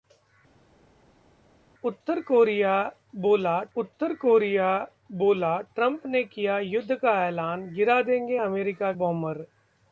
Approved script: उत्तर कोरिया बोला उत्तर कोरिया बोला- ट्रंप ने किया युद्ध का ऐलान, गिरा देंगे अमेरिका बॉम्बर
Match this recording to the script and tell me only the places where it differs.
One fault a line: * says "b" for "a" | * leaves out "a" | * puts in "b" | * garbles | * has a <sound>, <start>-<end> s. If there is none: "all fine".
all fine